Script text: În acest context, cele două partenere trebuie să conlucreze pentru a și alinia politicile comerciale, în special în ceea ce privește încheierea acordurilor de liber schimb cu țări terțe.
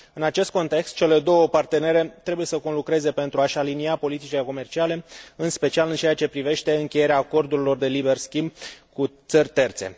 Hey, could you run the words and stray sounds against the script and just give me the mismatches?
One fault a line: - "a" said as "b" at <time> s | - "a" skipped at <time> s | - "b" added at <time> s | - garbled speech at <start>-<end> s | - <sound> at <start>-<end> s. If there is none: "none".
none